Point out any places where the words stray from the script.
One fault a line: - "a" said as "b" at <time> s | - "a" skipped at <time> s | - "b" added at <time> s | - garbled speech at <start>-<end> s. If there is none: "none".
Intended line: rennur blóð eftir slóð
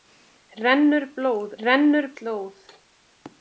- "eftir" said as "rennur" at 1.6 s